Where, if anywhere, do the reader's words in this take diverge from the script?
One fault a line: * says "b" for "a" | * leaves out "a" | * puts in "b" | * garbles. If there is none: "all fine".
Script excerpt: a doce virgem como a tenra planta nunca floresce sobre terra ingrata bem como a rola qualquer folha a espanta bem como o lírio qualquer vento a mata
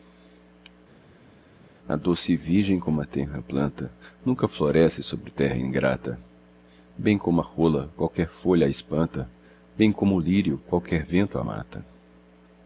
all fine